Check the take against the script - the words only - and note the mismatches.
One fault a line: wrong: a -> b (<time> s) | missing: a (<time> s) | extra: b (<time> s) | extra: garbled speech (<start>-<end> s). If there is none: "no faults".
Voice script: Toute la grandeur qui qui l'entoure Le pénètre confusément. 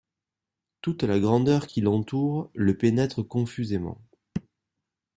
no faults